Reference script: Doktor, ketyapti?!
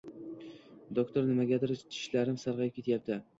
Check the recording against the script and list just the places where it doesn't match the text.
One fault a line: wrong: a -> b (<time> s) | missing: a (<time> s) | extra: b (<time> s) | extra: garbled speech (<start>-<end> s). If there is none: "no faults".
extra: nimagadir tishlarim sarg'ayib (1.3 s)